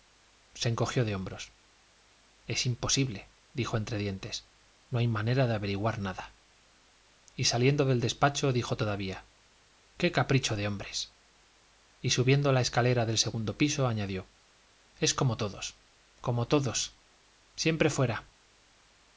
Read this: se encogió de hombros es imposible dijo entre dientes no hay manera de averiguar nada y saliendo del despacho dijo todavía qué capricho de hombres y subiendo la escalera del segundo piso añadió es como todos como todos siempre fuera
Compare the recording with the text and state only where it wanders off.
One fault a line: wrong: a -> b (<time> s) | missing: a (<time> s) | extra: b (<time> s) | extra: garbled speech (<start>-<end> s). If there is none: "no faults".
no faults